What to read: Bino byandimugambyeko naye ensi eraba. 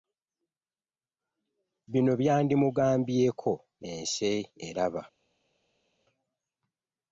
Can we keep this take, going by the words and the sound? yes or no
no